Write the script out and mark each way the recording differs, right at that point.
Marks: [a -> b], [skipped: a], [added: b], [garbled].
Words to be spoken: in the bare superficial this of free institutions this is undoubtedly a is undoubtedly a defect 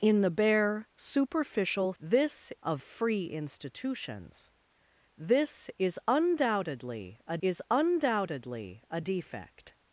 in the bare superficial this of free institutions this is undoubtedly a is undoubtedly a defect